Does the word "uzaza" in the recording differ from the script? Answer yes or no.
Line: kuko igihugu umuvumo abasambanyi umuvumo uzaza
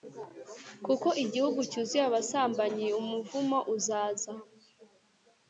no